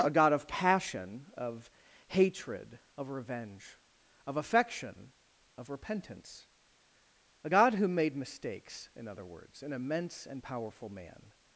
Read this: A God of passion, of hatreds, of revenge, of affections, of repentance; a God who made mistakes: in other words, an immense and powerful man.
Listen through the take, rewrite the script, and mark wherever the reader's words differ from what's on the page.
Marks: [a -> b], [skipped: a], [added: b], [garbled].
A God of passion, of [hatreds, -> hatred] of revenge, of [affections, -> affection] of repentance; a God who made mistakes: in other words, an immense and powerful man.